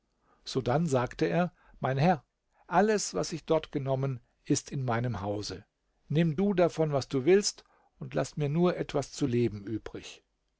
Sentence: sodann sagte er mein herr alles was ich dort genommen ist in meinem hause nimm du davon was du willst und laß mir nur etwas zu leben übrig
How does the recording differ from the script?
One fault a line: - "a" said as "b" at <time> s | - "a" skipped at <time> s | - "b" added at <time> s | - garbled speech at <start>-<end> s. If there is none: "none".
none